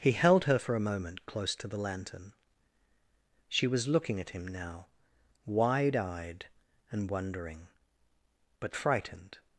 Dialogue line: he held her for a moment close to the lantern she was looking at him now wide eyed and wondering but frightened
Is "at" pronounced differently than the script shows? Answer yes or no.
no